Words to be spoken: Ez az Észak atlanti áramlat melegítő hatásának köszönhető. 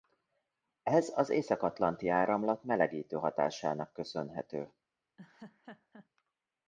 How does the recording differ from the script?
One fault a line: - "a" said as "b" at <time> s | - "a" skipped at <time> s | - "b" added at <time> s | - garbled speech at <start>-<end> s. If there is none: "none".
none